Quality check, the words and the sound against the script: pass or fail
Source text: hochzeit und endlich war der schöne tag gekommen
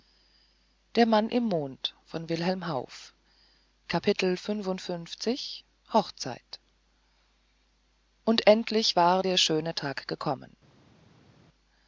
pass